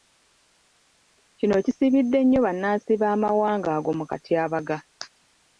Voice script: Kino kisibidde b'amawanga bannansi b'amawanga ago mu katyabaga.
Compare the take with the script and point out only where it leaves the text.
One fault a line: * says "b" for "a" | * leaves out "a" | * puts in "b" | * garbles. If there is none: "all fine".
* says "nnyo" for "b'amawanga"